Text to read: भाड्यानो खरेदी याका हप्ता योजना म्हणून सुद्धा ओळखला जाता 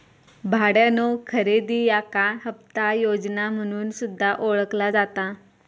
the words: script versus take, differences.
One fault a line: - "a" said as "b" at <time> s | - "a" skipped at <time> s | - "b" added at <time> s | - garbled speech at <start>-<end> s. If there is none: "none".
none